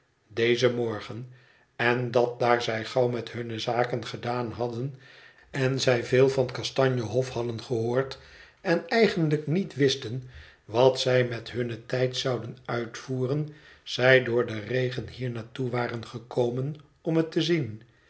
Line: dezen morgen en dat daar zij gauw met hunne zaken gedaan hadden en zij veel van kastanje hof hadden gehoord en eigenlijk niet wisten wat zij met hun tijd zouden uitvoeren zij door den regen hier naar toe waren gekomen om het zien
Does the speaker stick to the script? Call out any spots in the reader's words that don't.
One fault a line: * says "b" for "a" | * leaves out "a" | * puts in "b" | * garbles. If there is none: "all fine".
* puts in "te"